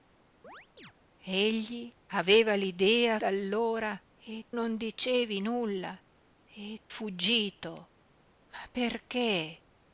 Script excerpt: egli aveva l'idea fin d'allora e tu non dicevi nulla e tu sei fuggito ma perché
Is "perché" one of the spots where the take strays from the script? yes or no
no